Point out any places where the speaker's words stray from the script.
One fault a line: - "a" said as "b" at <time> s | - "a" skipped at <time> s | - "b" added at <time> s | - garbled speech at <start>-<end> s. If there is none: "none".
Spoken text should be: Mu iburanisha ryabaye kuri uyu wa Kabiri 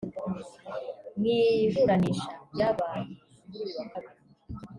none